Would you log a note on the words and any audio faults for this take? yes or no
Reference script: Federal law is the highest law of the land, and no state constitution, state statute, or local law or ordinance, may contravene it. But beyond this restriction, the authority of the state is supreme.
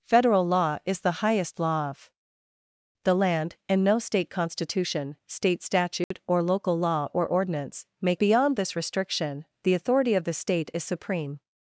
yes